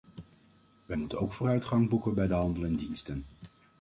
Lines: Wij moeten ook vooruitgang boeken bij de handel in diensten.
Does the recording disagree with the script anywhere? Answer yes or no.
no